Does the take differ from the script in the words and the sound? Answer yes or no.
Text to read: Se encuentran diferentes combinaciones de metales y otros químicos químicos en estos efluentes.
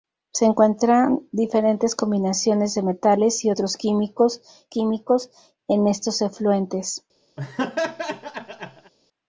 yes